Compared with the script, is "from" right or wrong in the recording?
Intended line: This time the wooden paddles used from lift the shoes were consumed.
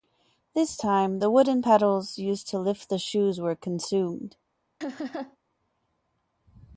wrong